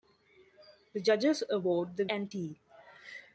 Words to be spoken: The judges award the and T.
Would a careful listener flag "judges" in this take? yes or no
no